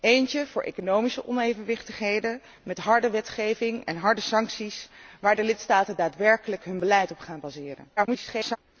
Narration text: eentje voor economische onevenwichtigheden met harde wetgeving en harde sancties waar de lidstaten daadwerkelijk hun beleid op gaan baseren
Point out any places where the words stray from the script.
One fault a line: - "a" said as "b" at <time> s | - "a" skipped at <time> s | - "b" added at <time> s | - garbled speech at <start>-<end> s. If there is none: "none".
- garbled speech at 8.0-8.6 s